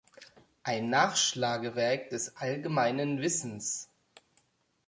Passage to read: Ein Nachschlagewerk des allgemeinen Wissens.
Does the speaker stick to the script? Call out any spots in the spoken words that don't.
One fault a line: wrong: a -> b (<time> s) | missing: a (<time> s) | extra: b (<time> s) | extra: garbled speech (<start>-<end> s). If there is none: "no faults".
no faults